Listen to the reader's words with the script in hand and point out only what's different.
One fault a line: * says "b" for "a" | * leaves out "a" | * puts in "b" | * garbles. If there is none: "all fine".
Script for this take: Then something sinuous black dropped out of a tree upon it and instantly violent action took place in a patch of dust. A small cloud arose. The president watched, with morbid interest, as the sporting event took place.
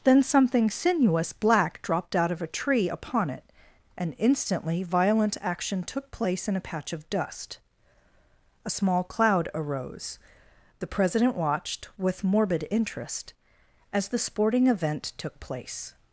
all fine